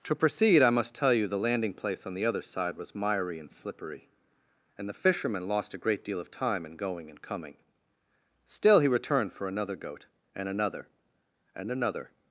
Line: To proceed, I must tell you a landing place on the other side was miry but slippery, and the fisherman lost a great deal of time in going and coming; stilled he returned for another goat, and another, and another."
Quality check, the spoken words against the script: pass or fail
fail